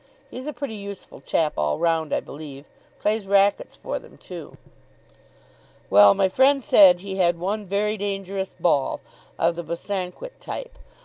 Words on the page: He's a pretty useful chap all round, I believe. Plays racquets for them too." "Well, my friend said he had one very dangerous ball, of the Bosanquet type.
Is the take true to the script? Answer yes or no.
yes